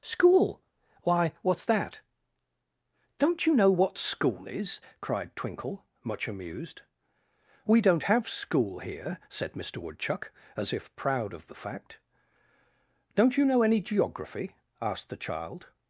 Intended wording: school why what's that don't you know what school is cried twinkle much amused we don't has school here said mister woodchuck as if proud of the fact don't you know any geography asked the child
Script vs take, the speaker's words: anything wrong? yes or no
yes